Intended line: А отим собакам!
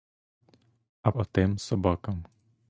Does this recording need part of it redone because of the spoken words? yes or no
no